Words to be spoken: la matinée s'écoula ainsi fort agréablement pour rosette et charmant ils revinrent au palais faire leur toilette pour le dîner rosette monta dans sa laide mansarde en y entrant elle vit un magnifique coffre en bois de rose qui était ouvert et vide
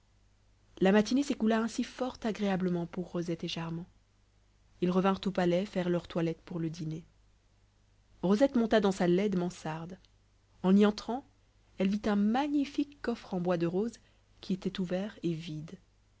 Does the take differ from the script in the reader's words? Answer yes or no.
no